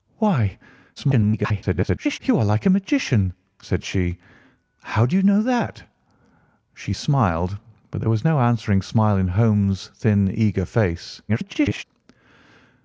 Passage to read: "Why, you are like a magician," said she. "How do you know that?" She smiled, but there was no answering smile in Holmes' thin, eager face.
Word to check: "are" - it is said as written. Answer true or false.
true